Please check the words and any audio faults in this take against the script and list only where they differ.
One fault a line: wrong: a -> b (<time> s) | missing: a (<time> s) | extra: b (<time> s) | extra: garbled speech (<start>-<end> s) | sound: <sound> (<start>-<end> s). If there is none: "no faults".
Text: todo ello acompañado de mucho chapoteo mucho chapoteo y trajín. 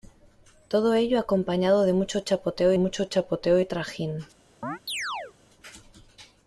sound: chirp (4.6-5.3 s)